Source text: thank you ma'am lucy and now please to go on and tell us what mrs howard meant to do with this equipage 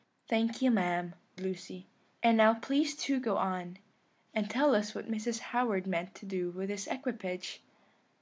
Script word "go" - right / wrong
right